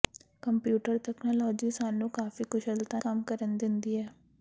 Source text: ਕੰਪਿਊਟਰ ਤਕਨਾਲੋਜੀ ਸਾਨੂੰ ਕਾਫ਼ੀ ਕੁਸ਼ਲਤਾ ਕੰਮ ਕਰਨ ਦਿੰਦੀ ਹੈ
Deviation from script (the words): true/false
false